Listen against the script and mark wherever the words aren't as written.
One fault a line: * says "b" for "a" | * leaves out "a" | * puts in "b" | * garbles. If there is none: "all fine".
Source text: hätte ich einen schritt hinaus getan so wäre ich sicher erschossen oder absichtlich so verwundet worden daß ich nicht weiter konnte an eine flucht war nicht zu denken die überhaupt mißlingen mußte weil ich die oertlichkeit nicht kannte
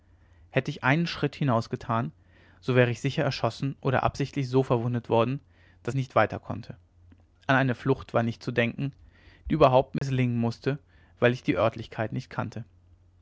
* leaves out "ich"